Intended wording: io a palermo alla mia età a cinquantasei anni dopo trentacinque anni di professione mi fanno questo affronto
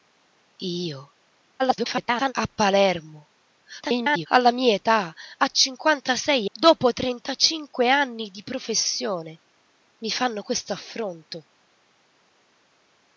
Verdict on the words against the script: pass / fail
fail